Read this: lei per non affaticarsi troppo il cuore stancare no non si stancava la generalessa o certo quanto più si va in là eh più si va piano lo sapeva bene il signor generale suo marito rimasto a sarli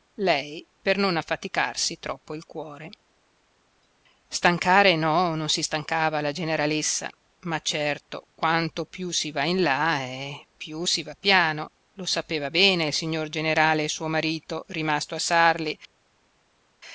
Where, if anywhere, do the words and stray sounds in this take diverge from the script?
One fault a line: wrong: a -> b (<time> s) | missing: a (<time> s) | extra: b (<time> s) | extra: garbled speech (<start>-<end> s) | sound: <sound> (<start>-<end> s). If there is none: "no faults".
wrong: o -> ma (7.4 s)